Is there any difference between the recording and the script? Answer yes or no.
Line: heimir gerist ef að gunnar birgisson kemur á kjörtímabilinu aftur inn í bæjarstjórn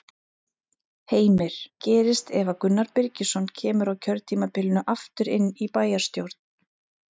no